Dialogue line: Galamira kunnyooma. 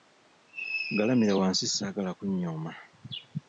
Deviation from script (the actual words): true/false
true